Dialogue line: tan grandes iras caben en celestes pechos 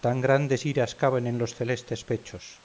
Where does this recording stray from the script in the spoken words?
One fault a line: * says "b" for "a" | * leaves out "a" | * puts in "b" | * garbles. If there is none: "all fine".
* puts in "los"